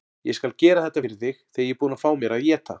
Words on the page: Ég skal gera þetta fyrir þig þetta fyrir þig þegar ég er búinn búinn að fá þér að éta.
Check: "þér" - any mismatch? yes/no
yes